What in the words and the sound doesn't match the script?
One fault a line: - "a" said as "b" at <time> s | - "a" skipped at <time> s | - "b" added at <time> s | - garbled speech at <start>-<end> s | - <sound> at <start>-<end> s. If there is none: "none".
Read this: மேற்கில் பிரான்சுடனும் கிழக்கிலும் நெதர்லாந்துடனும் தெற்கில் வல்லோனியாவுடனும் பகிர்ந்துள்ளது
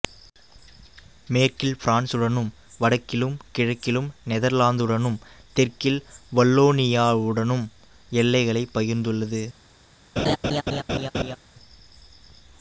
- "வடக்கிலும்" added at 2.8 s
- "எல்லைகளைப்" added at 8.1 s
- laugh at 10.2-11.4 s